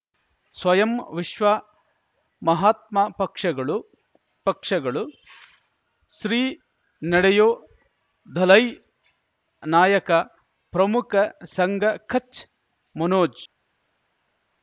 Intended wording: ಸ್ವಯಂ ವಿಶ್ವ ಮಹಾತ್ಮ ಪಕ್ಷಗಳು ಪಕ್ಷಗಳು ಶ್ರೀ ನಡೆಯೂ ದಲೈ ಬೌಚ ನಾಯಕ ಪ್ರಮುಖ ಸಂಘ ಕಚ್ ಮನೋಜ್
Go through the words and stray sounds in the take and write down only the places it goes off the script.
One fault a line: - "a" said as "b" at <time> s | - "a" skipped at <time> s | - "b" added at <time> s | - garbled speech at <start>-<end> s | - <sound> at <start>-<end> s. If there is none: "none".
- "ಬೌಚ" skipped at 8.6 s